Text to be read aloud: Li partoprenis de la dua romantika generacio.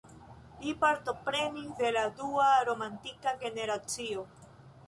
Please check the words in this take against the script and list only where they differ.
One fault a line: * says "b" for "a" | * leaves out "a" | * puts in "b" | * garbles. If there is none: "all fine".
all fine